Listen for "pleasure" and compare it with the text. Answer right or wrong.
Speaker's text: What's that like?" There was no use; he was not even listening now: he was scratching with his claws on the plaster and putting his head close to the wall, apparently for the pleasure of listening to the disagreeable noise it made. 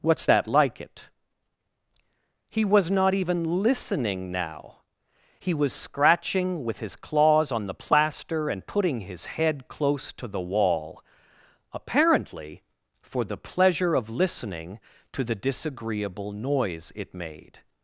right